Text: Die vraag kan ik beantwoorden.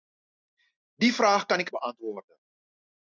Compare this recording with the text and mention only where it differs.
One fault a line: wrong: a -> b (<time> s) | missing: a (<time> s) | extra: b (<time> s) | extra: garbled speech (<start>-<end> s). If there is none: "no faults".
no faults